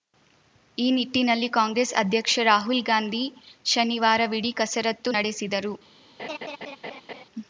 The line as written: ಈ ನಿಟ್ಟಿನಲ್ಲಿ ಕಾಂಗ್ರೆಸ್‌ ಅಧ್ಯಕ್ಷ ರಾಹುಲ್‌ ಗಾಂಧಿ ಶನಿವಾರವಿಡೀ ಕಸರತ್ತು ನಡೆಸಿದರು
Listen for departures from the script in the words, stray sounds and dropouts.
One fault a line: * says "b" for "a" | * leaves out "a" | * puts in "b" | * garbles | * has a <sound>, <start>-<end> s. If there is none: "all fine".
* has a laugh, 6.2-7.2 s